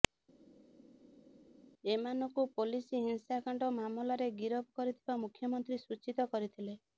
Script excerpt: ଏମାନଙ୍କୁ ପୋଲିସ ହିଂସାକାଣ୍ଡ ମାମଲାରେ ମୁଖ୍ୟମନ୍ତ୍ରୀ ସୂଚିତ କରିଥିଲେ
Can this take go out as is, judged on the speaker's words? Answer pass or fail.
fail